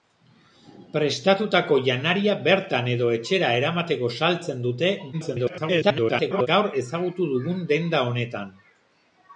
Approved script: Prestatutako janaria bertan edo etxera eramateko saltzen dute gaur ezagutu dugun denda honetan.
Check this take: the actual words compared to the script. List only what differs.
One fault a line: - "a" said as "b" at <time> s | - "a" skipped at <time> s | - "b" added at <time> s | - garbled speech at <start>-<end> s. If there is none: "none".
- garbled speech at 5.1-6.5 s